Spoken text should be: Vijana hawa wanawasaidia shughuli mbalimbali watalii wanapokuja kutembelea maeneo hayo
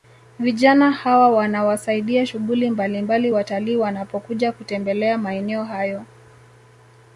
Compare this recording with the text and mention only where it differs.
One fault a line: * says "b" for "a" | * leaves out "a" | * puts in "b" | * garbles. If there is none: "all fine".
all fine